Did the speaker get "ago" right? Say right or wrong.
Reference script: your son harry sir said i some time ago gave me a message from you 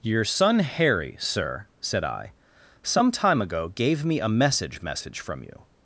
right